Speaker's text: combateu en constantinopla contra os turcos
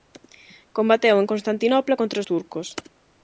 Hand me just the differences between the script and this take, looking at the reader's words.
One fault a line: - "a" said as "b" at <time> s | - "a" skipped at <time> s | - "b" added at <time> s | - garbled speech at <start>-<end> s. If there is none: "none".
none